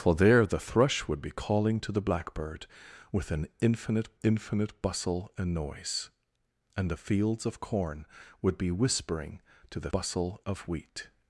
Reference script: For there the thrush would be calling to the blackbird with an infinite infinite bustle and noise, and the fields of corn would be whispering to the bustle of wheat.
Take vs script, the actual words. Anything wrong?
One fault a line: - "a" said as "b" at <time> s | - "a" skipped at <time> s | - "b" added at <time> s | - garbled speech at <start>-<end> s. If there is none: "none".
none